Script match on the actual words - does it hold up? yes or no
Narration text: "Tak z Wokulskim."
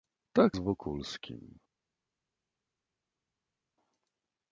yes